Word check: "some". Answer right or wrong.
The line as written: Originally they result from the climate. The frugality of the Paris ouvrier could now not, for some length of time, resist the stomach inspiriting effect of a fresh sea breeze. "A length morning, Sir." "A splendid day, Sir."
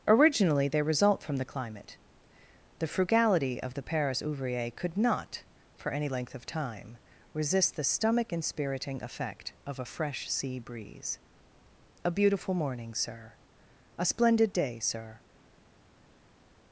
wrong